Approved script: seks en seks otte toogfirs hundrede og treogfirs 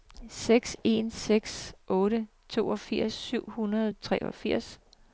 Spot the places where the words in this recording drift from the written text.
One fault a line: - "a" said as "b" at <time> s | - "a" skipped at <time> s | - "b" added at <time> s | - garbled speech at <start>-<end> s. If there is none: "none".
- "syv" added at 3.1 s